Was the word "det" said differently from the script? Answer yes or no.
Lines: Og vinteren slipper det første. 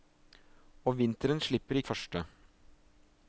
no